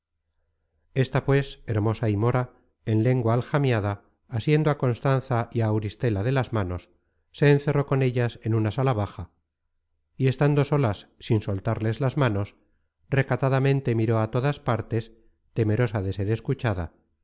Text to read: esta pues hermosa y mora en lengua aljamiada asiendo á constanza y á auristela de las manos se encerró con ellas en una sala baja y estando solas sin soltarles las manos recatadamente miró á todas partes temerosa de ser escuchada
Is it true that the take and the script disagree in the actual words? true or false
false